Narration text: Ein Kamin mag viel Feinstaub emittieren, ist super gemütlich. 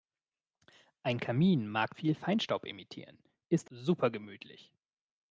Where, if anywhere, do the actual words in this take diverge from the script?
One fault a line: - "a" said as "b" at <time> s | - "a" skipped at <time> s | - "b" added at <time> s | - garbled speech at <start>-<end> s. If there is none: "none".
none